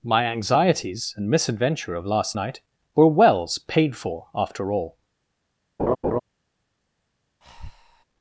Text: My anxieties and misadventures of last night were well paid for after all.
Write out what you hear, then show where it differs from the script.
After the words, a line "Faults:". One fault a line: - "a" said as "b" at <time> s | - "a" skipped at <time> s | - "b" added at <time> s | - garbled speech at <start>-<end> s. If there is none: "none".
My anxieties and misadventure of last night were wells paid for after all.
Faults:
- "misadventures" said as "misadventure" at 1.3 s
- "well" said as "wells" at 3.1 s